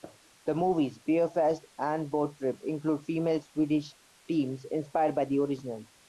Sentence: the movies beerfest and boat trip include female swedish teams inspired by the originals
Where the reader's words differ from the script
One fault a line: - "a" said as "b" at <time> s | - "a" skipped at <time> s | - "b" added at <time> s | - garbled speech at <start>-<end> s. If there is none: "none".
none